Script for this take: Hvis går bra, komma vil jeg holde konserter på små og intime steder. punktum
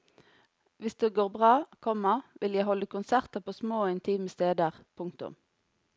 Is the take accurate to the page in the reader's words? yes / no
no